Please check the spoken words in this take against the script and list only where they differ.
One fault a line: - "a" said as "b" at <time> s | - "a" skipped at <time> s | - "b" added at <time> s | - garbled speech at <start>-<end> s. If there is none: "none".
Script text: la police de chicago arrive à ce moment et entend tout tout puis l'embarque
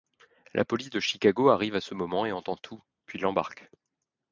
- "tout" skipped at 2.8 s